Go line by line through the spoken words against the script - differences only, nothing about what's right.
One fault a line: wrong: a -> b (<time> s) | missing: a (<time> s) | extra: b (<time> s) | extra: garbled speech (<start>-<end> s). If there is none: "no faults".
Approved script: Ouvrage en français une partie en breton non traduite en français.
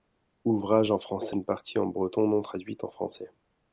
no faults